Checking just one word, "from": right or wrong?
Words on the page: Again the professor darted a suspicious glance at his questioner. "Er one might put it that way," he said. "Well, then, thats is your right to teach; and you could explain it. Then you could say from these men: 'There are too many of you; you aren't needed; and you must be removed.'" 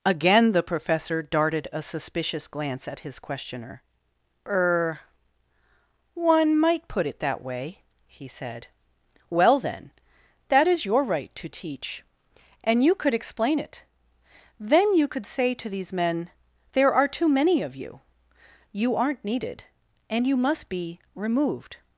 wrong